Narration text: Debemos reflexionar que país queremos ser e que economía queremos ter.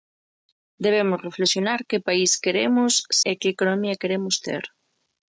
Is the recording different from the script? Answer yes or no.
yes